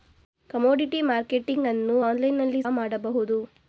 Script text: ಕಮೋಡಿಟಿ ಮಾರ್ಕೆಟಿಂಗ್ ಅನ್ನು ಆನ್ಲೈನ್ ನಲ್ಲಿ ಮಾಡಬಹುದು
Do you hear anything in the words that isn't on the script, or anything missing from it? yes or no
no